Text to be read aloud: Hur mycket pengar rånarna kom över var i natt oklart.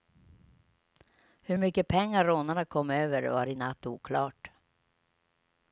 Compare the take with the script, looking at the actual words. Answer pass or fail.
pass